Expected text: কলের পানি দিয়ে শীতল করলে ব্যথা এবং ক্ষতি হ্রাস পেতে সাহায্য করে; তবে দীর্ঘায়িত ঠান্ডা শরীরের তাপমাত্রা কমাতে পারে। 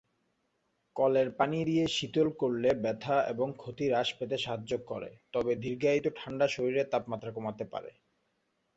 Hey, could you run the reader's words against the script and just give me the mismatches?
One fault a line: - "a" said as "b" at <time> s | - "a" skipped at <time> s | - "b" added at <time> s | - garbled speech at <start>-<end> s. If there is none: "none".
none